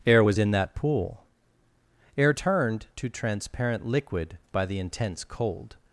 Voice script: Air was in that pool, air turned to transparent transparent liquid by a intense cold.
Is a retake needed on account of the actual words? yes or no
yes